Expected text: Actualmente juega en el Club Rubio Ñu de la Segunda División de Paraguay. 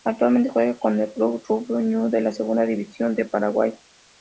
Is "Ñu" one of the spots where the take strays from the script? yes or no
no